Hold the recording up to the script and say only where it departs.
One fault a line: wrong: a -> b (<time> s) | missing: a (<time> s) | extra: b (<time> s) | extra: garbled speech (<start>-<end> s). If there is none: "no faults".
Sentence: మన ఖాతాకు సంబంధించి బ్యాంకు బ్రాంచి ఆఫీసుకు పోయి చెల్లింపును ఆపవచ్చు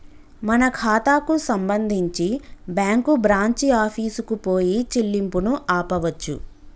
no faults